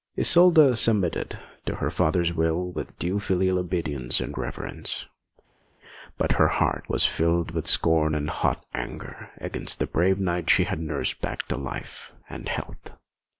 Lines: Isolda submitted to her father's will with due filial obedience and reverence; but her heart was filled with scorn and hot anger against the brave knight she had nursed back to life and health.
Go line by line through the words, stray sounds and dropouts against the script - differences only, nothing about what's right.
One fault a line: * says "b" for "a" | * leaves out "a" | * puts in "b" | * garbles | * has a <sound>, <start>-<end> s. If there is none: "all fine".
all fine